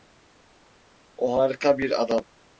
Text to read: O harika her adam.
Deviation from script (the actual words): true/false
true